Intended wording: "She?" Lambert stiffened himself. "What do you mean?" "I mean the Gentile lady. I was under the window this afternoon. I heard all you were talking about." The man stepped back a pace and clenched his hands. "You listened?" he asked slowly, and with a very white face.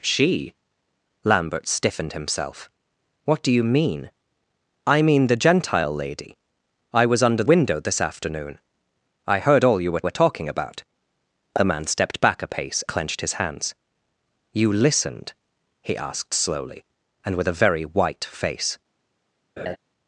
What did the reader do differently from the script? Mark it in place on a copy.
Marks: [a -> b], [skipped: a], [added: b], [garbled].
"She?" Lambert stiffened himself. "What do you mean?" "I mean the Gentile lady. I was under [skipped: the] window this afternoon. I heard all you were [added: were] talking about." The man stepped back a pace [skipped: and] clenched his hands. "You listened?" he asked slowly, and with a very white face.